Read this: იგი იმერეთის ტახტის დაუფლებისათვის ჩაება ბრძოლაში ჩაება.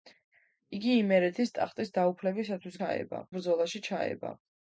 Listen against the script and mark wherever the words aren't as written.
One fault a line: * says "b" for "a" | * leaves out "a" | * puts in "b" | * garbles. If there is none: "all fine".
all fine